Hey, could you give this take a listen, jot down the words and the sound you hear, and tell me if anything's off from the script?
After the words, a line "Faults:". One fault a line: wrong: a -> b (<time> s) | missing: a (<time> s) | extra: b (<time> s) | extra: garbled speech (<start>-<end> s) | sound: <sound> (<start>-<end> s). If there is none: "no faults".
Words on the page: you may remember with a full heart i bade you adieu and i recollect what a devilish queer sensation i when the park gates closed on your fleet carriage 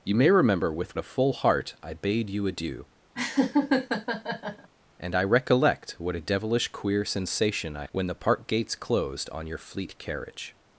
you may remember with a full heart i bade you adieu and i recollect what a devilish queer sensation i when the park gates closed on your fleet carriage
Faults:
sound: laugh (3.1-4.7 s)